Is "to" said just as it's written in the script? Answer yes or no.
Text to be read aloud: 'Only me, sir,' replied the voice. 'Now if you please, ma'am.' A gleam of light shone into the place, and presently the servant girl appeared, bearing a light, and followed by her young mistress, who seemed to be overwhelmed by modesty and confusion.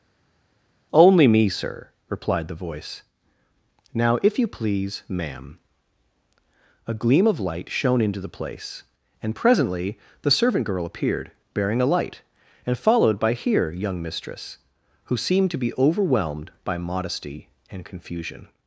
yes